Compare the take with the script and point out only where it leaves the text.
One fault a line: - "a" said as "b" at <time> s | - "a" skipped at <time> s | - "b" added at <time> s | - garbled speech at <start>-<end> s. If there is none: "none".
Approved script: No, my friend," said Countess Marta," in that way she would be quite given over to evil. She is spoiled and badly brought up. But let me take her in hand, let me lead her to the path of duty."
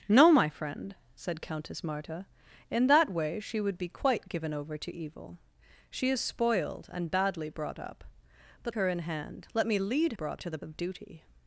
- "let me take" skipped at 8.8 s
- "her" said as "brought" at 10.1 s
- "path" skipped at 10.6 s